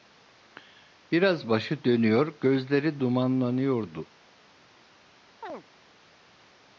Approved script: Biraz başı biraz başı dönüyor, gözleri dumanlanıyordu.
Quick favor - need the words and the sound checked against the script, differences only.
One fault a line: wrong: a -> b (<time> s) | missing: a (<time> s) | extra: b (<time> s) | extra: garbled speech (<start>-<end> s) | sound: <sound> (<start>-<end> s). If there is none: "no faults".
missing: biraz başı (1.8 s)
sound: chirp (5.4-5.6 s)